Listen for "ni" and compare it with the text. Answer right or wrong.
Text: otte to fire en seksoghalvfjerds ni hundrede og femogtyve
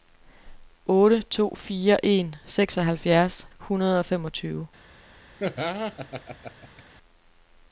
wrong